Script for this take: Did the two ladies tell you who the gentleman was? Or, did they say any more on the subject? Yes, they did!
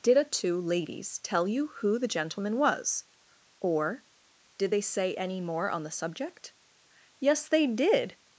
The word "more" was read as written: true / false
true